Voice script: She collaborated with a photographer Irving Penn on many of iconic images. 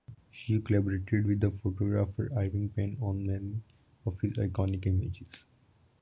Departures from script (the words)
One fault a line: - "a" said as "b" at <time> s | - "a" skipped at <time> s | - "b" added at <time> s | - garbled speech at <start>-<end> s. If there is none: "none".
- "a" said as "the" at 1.4 s
- "his" added at 4.2 s